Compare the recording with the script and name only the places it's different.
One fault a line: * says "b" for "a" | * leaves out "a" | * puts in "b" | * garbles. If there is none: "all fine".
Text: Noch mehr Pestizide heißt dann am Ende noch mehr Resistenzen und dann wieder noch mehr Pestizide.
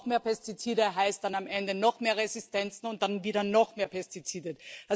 all fine